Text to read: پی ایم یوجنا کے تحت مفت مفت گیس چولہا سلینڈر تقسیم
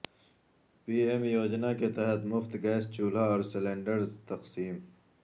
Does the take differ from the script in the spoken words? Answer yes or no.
yes